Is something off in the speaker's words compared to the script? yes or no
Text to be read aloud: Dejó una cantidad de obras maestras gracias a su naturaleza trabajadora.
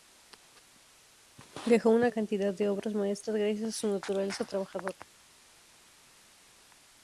no